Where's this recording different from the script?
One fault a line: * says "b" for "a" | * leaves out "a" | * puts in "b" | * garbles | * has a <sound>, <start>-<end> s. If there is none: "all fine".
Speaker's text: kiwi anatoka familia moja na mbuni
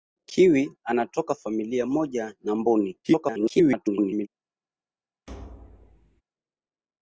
* garbles
* has a thud, 5.3-6.2 s